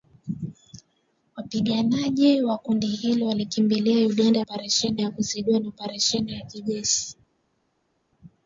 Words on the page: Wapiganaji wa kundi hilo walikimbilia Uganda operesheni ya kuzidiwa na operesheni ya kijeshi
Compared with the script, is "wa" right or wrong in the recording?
right